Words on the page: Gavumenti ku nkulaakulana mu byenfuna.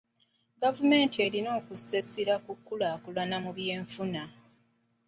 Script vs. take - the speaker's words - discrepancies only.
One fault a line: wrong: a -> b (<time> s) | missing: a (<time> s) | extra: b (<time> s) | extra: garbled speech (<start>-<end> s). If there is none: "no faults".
extra: erina okussa essira (1.3 s)